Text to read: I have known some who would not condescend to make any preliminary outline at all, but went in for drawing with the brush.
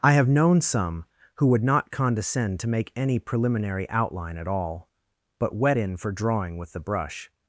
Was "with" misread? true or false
false